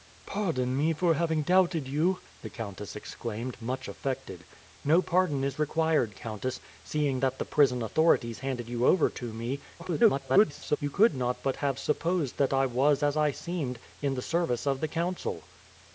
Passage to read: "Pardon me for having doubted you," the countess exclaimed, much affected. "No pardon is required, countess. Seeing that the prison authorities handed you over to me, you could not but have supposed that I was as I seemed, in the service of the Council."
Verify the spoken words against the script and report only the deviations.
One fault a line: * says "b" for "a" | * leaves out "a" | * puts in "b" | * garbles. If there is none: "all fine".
* garbles